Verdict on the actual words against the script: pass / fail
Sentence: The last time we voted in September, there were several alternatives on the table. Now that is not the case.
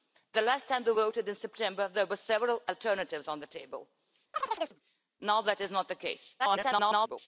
fail